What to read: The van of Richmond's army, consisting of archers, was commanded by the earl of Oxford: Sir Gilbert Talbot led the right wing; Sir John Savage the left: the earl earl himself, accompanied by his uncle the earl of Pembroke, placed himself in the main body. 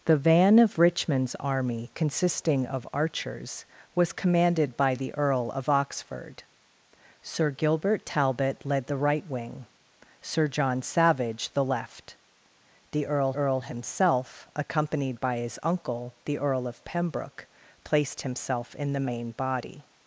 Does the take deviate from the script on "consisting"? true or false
false